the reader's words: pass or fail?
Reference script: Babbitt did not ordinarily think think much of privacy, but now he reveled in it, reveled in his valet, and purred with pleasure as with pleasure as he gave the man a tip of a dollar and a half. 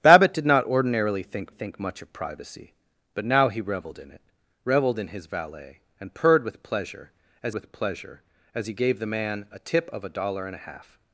pass